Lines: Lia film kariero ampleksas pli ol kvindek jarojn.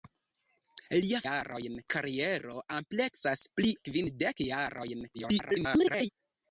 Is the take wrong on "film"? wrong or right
wrong